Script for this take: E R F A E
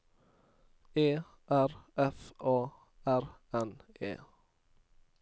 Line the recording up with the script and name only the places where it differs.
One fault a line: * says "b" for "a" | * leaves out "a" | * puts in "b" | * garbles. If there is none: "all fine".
* puts in "R N"